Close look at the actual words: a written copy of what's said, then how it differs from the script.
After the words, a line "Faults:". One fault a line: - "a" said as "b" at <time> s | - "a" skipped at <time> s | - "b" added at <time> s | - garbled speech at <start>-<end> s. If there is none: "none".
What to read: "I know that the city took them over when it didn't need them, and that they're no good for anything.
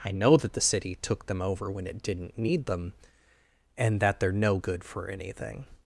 "I know that the city took them over when it didn't need them, and that they're no good for anything.
Faults:
none